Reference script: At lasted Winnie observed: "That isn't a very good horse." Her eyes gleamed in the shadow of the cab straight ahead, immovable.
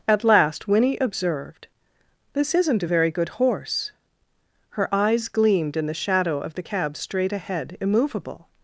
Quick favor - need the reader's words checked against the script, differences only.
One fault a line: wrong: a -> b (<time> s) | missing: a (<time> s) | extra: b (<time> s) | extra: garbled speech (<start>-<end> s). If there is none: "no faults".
wrong: lasted -> last (0.2 s)
wrong: That -> This (2.3 s)